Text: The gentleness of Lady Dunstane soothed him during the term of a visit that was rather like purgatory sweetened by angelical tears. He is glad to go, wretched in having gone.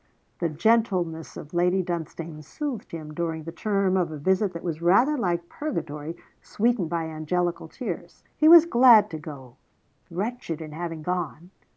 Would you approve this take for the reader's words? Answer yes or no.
no